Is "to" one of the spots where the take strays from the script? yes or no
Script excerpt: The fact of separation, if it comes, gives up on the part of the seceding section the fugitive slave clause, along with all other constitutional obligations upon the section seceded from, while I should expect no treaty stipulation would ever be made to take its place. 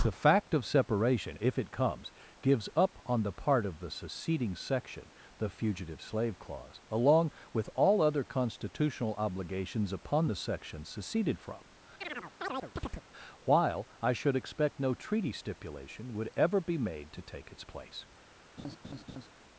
no